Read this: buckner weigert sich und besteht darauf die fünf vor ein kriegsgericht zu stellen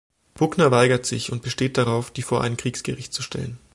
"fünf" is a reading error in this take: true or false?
true